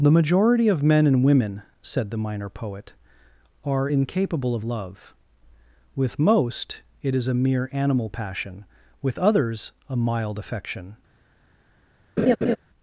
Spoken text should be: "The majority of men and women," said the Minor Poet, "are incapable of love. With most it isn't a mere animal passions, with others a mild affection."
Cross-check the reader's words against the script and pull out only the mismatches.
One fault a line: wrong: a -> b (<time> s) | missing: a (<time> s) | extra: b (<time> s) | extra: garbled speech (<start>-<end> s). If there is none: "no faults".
wrong: isn't -> is (7.1 s)
wrong: passions -> passion (8.1 s)